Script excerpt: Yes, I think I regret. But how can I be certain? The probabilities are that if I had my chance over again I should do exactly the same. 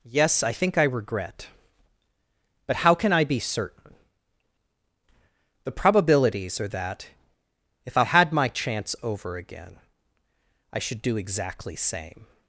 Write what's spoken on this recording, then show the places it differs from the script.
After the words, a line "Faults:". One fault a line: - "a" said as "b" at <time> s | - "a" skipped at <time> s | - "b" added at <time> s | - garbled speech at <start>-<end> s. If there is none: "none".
Yes, I think I regret. But how can I be certain? The probabilities are that if I had my chance over again I should do exactly same.
Faults:
- "the" skipped at 11.8 s